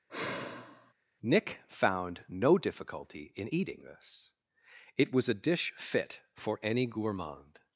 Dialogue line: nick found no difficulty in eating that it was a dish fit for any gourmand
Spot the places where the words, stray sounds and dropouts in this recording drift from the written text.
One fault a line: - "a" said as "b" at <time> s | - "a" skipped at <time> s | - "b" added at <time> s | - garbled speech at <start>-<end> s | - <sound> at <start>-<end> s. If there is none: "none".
- sigh at 0.1-0.9 s
- "that" said as "this" at 3.8 s